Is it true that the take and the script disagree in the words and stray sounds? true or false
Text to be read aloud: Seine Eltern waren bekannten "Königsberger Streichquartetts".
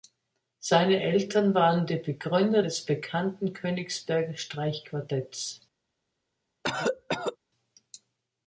true